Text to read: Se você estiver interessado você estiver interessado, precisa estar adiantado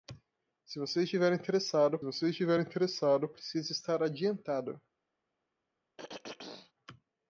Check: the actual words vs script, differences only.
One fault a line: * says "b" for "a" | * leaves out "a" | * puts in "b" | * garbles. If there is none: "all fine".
all fine